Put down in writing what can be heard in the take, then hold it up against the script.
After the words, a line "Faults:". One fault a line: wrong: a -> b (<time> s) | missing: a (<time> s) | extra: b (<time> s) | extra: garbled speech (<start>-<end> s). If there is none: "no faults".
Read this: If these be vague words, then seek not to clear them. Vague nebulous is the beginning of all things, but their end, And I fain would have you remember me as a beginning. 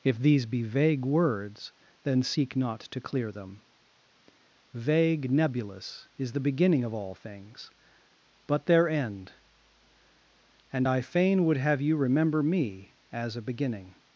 If these be vague words, then seek not to clear them. Vague nebulous is the beginning of all things, but their end, And I fain would have you remember me as a beginning.
Faults:
no faults